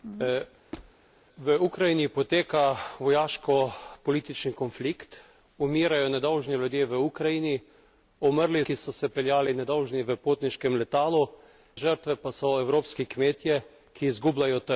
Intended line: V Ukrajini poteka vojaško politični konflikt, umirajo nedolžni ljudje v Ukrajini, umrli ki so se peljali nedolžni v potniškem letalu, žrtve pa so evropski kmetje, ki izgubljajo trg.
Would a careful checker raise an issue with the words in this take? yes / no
no